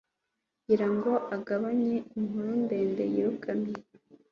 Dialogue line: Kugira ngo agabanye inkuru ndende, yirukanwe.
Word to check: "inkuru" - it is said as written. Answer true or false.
true